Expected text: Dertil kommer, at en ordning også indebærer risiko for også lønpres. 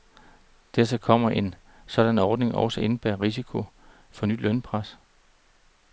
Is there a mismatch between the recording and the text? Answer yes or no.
yes